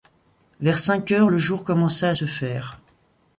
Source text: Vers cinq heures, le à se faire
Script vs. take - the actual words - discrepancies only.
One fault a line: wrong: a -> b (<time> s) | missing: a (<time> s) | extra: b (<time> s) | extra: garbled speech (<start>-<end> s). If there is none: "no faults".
extra: jour commença (1.4 s)